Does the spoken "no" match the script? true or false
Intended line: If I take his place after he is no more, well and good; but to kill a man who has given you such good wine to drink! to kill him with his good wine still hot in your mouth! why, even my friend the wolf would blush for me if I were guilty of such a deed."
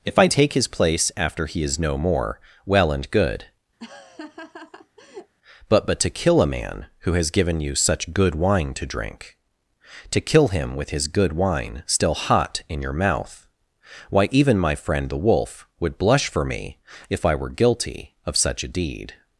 true